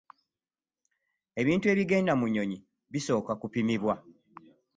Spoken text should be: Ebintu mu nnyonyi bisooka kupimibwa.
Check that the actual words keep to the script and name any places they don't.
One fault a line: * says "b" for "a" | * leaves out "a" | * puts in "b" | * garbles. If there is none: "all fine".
* puts in "ebigenda"